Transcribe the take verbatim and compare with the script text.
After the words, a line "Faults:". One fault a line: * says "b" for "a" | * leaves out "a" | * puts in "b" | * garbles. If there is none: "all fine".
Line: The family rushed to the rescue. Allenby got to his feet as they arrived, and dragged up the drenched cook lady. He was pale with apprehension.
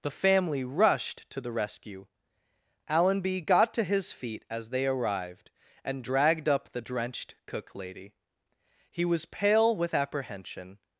The family rushed to the rescue. Allenby got to his feet as they arrived, and dragged up the drenched cook lady. He was pale with apprehension.
Faults:
all fine